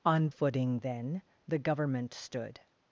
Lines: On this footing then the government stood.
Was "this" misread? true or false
true